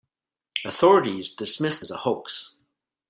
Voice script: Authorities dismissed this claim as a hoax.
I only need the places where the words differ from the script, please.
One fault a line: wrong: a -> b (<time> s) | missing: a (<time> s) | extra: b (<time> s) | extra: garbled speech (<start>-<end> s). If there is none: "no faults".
missing: this claim (1.8 s)